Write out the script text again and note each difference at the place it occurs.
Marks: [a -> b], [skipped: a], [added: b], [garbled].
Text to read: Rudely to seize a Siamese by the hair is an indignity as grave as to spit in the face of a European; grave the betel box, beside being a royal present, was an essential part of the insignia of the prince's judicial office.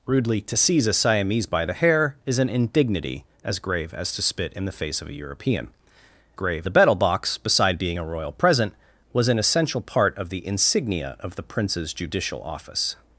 Rudely to seize a Siamese by the hair is an indignity as grave as to spit in the face of a European; grave the betel box, beside being a royal present, was an essential part of the insignia of the prince's judicial office.